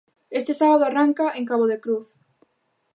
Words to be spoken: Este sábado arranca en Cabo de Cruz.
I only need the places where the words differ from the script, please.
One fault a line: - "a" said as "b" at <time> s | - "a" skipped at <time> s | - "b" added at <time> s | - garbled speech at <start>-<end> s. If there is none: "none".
none